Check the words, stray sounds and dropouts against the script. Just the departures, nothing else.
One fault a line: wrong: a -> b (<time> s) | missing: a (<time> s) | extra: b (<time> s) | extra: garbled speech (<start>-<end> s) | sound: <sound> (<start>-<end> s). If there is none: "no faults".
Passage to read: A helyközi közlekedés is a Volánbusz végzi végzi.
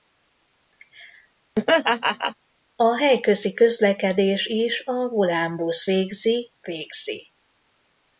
sound: laugh (1.6-2.4 s)